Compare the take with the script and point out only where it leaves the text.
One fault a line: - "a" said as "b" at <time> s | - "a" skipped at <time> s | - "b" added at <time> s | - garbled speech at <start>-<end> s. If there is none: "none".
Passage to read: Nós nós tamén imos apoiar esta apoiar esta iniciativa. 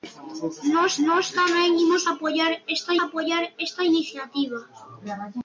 none